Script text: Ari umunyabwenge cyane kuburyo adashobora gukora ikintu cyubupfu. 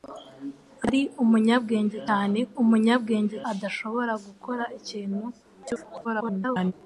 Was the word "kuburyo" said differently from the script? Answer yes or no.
yes